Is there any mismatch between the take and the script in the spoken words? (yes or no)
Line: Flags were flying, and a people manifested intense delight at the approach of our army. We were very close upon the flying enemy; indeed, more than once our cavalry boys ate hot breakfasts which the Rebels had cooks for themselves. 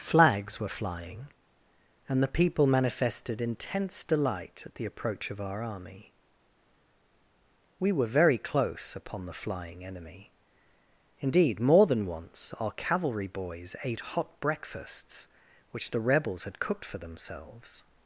yes